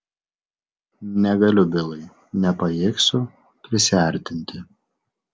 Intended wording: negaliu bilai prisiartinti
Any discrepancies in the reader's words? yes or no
yes